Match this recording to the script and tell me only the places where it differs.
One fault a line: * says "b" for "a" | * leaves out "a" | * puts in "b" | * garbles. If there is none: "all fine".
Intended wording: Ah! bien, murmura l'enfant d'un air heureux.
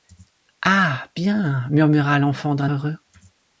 * leaves out "air"